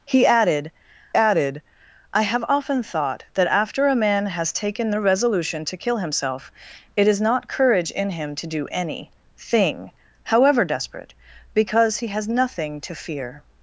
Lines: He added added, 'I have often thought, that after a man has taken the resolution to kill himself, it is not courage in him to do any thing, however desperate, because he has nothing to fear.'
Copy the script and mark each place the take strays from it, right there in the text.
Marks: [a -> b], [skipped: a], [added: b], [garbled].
He added added, 'I have often thought, that after a man has taken the resolution to kill himself, it is not courage in him to do any thing, however desperate, because he has nothing to fear.'